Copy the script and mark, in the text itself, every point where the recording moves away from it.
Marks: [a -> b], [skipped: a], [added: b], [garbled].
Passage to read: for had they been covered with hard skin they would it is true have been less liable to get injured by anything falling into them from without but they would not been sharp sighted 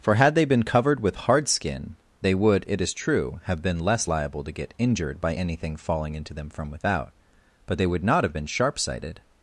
for had they been covered with hard skin they would it is true have been less liable to get injured by anything falling into them from without but they would not [added: have] been sharp sighted